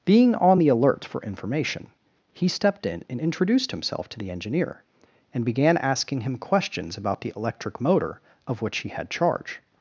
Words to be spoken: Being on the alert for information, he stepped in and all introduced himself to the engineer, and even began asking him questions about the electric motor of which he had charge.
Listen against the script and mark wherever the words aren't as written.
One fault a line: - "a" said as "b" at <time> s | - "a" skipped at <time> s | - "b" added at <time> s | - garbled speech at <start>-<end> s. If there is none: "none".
- "all" skipped at 3.2 s
- "even" skipped at 5.4 s